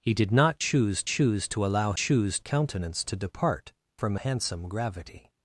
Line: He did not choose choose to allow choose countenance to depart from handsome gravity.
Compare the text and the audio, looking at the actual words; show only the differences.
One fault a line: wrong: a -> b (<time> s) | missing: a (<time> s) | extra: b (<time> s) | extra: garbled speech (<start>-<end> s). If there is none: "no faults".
no faults